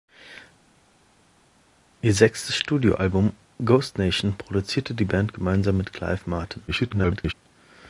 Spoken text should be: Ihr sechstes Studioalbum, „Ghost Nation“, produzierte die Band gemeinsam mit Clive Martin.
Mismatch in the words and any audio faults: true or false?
true